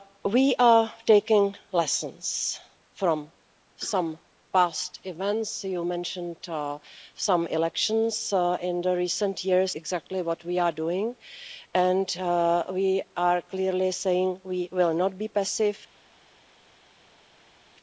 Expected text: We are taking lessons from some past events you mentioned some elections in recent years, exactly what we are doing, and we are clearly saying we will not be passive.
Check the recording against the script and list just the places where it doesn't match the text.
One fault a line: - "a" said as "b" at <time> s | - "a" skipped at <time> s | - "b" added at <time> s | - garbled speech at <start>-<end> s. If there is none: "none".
none